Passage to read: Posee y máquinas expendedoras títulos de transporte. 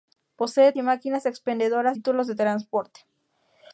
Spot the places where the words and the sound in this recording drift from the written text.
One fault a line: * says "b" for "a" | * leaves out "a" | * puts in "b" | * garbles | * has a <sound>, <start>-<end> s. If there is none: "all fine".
all fine